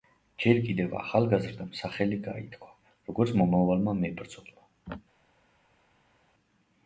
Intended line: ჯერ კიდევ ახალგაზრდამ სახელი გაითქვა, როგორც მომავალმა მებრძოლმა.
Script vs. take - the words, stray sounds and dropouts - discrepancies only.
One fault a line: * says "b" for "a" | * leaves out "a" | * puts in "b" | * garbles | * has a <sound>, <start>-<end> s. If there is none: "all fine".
all fine